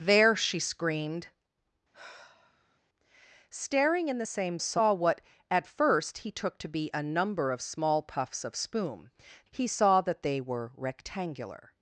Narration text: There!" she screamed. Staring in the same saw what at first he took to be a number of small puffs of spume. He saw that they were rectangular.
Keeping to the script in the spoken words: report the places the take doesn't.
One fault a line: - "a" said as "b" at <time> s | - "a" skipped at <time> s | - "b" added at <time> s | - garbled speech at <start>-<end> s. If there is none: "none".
none